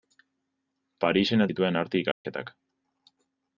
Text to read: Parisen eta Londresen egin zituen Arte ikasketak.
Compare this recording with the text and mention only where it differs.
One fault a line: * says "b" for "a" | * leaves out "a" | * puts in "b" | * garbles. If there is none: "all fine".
* leaves out "eta Londresen egin"